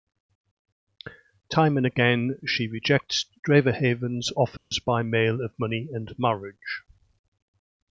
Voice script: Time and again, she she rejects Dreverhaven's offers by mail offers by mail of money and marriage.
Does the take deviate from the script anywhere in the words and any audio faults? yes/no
yes